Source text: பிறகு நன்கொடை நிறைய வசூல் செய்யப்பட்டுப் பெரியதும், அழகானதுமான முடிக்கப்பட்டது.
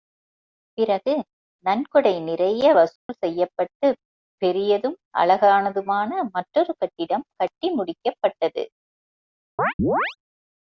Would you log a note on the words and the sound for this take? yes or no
yes